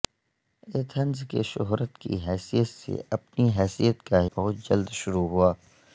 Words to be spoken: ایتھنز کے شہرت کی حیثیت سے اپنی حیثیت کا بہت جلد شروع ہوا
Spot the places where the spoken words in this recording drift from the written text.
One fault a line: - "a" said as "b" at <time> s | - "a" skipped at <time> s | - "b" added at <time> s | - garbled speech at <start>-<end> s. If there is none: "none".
none